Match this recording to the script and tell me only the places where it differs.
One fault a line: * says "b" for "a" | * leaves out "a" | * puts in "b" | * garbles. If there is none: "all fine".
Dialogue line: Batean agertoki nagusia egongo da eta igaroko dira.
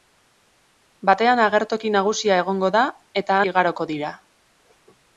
all fine